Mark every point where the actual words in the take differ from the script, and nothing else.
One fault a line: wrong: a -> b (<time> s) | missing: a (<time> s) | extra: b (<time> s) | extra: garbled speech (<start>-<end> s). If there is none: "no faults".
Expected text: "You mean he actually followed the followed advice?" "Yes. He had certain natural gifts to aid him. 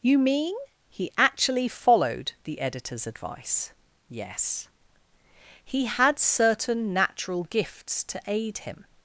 wrong: followed -> editor's (2.6 s)